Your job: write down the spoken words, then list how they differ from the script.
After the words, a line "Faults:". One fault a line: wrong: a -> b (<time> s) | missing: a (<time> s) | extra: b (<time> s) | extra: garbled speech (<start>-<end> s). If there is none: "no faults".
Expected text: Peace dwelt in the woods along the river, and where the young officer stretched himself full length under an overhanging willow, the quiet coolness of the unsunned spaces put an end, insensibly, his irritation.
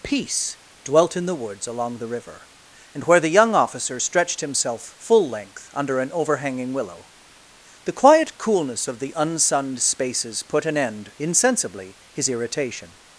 Peace dwelt in the woods along the river, and where the young officer stretched himself full length under an overhanging willow, the quiet coolness of the unsunned spaces put an end, insensibly, his irritation.
Faults:
no faults